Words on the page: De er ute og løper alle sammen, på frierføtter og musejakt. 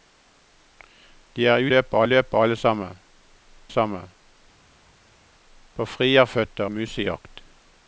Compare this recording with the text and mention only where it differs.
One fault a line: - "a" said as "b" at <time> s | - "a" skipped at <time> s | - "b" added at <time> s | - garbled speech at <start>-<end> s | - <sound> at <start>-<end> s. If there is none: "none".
- "ute" said as "løper" at 1.7 s
- "sammen" added at 3.7 s
- "og" skipped at 6.6 s